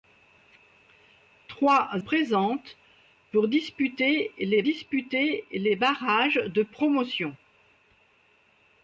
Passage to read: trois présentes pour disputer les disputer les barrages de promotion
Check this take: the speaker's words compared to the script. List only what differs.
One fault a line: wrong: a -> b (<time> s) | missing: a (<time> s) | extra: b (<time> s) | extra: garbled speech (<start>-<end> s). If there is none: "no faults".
no faults